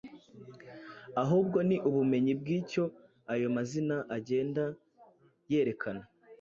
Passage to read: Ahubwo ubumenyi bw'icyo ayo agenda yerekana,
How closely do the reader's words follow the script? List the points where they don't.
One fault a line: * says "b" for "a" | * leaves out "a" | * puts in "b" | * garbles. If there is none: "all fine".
* puts in "ni"
* puts in "mazina"